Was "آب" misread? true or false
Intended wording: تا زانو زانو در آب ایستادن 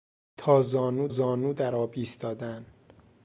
false